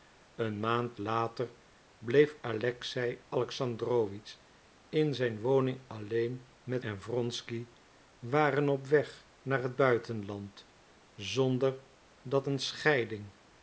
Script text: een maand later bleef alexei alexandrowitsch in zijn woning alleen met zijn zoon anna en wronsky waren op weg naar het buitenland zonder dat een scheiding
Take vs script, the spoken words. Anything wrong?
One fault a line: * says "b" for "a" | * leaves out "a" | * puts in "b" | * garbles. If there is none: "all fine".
* leaves out "zijn zoon anna"